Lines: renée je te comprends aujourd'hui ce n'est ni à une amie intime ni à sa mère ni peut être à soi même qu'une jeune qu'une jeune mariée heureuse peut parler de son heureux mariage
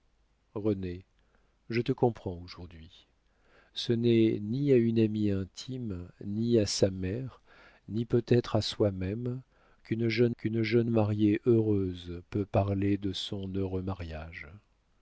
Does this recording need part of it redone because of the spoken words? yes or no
no